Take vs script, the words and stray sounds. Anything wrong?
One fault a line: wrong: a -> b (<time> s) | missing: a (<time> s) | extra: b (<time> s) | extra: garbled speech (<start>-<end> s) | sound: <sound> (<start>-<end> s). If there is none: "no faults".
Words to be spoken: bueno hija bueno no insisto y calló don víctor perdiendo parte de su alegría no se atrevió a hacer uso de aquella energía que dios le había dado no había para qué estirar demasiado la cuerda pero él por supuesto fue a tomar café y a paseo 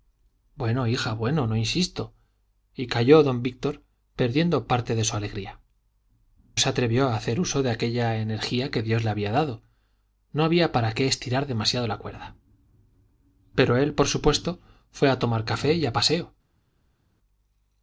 missing: no (5.6 s)